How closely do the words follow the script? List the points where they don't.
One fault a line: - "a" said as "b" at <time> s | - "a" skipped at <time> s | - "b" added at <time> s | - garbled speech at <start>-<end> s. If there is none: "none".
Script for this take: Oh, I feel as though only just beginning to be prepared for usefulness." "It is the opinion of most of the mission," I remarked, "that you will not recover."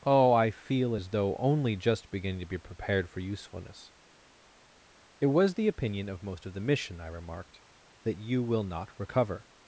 - "is" said as "was" at 5.3 s